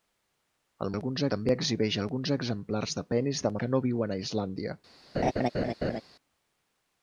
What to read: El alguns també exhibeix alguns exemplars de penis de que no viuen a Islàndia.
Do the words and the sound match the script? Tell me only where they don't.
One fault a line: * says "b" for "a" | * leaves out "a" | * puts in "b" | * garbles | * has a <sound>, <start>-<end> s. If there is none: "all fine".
* has a laugh, 5.1-6.0 s